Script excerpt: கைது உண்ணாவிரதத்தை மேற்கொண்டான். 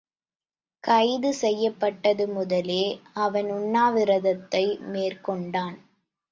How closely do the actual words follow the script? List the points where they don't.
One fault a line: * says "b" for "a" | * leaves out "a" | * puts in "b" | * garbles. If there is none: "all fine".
* puts in "செய்யப்பட்டது முதலே அவன்"